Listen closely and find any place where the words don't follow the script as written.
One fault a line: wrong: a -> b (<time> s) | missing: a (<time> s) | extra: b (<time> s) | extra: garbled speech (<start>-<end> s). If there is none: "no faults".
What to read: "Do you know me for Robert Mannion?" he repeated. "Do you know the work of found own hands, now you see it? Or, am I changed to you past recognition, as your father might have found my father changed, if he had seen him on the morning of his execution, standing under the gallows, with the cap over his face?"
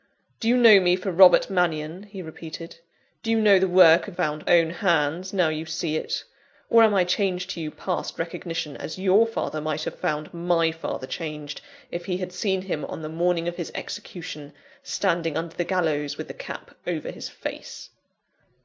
no faults